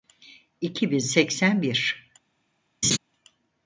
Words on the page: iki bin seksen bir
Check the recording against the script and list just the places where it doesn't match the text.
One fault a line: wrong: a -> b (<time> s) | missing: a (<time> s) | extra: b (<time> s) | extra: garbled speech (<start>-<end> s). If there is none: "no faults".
no faults